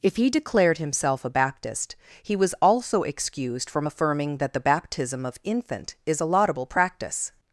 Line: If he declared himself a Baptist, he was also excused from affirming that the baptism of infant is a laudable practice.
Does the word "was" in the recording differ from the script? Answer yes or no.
no